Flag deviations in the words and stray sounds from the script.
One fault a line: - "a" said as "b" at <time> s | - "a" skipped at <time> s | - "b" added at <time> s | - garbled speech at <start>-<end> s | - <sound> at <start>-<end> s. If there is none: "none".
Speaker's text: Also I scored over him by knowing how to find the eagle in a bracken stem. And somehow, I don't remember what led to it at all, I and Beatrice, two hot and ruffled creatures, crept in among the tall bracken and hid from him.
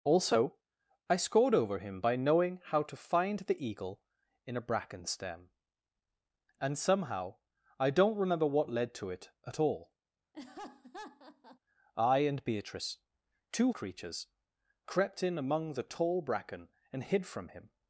- laugh at 10.3-11.6 s
- "hot and ruffled" skipped at 13.7 s